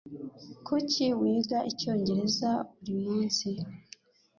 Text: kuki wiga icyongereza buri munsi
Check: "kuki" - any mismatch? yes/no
no